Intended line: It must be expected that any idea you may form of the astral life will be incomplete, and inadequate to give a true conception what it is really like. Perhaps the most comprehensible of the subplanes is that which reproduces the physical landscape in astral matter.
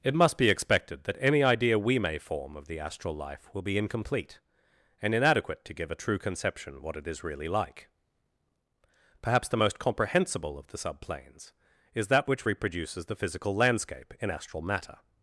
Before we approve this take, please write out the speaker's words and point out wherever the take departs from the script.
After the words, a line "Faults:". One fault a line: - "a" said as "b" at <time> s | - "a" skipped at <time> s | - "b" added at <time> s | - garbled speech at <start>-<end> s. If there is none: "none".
It must be expected that any idea we may form of the astral life will be incomplete, and inadequate to give a true conception what it is really like. Perhaps the most comprehensible of the subplanes is that which reproduces the physical landscape in astral matter.
Faults:
- "you" said as "we" at 1.8 s